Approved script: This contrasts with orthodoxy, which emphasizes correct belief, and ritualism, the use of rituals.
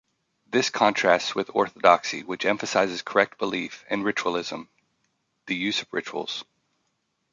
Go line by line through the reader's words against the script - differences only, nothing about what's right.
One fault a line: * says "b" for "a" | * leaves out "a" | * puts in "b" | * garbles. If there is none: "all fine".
all fine